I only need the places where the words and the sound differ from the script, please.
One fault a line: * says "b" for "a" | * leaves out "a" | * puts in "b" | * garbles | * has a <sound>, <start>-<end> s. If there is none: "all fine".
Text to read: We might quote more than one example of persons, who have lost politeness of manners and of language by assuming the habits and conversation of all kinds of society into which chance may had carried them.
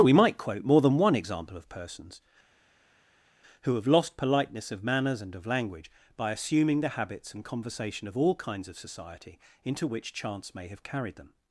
* says "have" for "had"